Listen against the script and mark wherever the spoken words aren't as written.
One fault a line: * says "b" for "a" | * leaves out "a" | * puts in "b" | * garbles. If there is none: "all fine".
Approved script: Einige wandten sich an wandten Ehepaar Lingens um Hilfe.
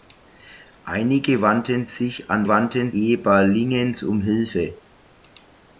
all fine